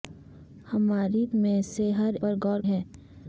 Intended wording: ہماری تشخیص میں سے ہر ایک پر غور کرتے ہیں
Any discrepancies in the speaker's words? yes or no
yes